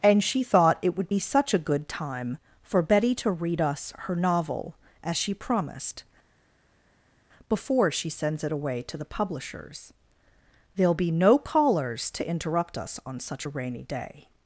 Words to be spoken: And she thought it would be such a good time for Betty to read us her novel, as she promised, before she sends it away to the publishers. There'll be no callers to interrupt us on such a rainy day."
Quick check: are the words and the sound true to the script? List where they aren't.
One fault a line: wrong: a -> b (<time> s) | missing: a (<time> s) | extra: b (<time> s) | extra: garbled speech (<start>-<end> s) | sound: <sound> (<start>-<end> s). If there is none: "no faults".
no faults